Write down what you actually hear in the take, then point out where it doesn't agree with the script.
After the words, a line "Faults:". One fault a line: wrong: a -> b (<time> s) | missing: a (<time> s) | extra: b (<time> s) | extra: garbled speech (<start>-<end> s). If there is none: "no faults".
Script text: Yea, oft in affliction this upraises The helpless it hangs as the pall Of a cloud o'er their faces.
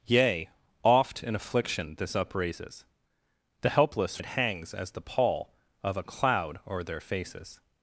Yea, oft in affliction this upraises The helpless it hangs as the pall Of a cloud o'er their faces.
Faults:
no faults